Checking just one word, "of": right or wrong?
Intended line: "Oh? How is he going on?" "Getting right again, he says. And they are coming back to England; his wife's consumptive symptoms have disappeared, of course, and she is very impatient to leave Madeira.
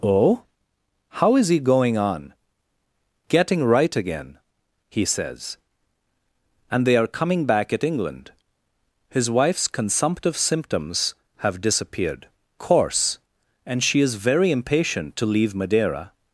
wrong